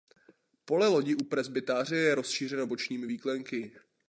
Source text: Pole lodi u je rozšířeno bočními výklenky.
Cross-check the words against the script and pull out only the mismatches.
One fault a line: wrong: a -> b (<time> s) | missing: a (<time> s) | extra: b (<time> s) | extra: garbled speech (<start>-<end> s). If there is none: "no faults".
extra: presbytáře (1.2 s)